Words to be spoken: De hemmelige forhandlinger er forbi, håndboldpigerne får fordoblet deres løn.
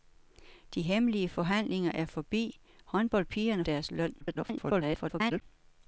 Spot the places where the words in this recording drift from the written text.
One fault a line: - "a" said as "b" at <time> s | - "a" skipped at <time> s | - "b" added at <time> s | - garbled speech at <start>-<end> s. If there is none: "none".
- "får fordoblet" skipped at 3.6 s
- garbled speech at 4.2-5.4 s